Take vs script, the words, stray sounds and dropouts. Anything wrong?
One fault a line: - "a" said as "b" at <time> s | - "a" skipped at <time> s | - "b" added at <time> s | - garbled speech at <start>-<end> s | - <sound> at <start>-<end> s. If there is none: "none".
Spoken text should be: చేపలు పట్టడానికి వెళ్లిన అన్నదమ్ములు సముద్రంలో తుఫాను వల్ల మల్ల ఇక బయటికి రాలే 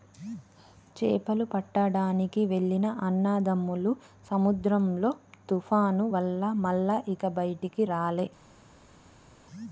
none